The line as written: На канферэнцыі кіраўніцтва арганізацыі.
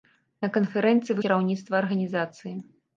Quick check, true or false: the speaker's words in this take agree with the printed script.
true